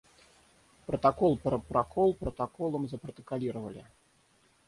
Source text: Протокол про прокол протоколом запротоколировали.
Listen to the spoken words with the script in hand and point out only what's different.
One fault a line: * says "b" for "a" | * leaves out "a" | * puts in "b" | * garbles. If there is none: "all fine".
all fine